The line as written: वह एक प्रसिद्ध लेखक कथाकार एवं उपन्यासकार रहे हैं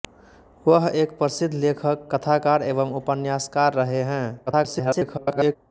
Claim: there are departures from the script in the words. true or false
true